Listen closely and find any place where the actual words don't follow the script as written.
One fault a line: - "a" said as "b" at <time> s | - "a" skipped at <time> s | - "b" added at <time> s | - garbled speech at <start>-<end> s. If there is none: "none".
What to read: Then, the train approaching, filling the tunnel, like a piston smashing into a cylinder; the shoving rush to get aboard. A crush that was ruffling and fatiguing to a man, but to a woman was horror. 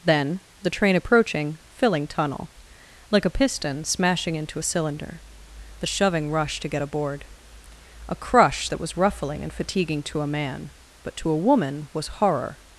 - "the" skipped at 2.1 s